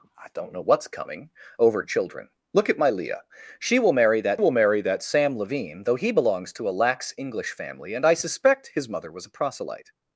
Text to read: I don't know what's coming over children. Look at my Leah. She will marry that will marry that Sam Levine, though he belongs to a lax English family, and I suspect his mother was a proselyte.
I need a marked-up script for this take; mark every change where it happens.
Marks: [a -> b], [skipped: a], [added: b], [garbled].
I don't know what's coming over children. Look at my Leah. She will marry that will marry that Sam Levine, though he belongs to a lax English family, and I suspect his mother was a proselyte.